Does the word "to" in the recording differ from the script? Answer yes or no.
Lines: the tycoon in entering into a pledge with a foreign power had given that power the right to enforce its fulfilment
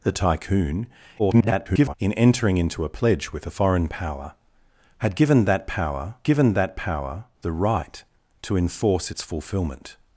no